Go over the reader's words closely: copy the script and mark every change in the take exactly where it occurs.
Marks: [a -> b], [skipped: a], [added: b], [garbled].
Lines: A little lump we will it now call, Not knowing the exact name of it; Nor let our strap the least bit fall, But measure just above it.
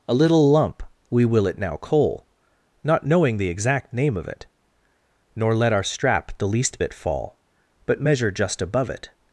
A little lump we will it now [call, -> coal] Not knowing the exact name of it; Nor let our strap the least bit fall, But measure just above it.